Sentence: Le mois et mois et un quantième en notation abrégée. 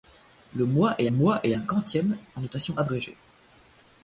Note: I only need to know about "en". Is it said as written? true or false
true